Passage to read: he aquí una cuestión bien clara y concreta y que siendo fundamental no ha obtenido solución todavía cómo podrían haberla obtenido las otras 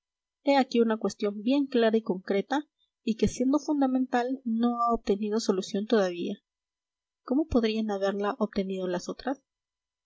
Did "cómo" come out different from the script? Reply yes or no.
no